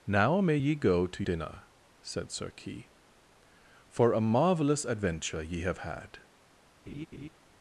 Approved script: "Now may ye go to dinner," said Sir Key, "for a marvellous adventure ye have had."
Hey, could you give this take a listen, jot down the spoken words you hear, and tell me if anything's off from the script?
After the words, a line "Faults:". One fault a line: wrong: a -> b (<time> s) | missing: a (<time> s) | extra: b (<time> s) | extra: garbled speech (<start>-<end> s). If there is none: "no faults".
"Now may ye go to dinner," said Sir Key, "for a marvellous adventure ye have had."
Faults:
no faults